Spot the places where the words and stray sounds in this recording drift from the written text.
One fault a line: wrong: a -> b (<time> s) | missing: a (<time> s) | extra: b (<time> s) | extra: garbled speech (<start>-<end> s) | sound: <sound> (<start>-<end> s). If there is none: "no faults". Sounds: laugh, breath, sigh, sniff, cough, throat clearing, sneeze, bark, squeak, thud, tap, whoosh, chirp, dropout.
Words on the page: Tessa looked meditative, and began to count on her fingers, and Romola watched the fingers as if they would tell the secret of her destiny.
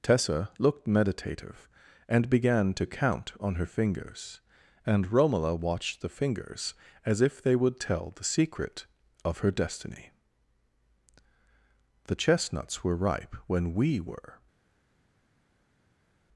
extra: The chestnuts were ripe when we were (12.1 s)